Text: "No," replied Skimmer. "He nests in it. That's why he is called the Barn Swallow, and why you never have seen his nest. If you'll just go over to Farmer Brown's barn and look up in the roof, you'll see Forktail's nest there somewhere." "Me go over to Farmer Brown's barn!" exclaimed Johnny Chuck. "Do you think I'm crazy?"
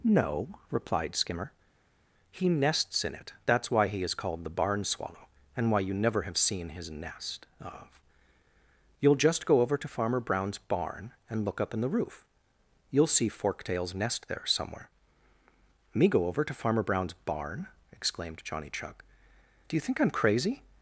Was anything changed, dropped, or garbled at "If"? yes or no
yes